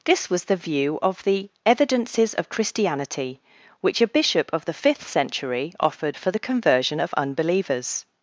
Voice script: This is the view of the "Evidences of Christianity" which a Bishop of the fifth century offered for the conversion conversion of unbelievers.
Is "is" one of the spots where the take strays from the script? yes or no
yes